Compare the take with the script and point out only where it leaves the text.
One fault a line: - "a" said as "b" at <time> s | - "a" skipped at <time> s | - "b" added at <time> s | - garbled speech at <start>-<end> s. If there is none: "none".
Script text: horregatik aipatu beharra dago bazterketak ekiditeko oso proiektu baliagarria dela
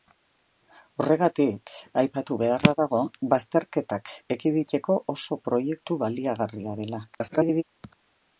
- garbled speech at 7.1-7.6 s